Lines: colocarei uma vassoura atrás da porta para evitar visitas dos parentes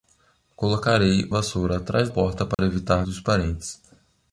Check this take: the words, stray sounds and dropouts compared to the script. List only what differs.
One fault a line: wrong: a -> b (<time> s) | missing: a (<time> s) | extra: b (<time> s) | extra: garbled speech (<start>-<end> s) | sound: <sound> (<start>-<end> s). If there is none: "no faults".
missing: uma (1.3 s)
missing: da (2.1 s)
sound: dropout (2.5-2.6 s)
missing: visitas (3.0 s)